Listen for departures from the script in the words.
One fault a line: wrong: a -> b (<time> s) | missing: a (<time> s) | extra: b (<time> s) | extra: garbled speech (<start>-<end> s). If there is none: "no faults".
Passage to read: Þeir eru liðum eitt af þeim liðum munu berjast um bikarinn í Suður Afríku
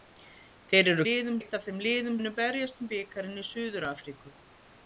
no faults